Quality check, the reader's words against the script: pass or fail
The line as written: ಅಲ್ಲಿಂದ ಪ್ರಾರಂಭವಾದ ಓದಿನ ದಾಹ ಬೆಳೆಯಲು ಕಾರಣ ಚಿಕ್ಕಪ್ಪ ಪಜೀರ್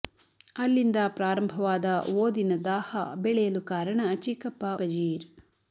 pass